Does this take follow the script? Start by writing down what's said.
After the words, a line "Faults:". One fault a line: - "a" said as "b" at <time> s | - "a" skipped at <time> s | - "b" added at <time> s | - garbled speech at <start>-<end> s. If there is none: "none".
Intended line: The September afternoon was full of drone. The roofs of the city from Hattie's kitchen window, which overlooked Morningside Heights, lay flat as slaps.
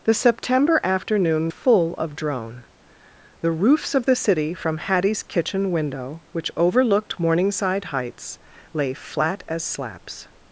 The September afternoon full of drone. The roofs of the city from Hattie's kitchen window, which overlooked Morningside Heights, lay flat as slaps.
Faults:
- "was" skipped at 1.5 s